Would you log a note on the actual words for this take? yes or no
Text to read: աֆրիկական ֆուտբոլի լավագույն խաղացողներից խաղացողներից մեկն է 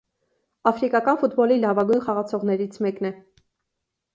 yes